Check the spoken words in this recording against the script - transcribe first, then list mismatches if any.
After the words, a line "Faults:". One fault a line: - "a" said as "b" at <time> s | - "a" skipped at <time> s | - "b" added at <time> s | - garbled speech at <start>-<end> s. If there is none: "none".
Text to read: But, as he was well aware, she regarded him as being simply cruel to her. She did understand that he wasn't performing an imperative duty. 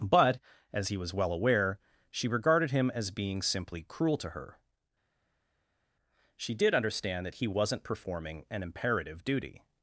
But, as he was well aware, she regarded him as being simply cruel to her. She did understand that he wasn't performing an imperative duty.
Faults:
none